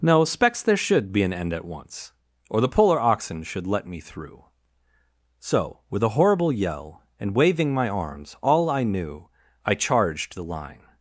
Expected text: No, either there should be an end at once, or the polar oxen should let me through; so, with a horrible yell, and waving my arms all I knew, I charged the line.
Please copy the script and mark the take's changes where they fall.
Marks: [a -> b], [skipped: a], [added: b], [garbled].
No, [either -> specs] there should be an end at once, or the polar oxen should let me through; so, with a horrible yell, and waving my arms all I knew, I charged the line.